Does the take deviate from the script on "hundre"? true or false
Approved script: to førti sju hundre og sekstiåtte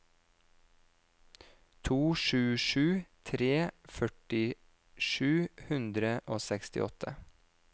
false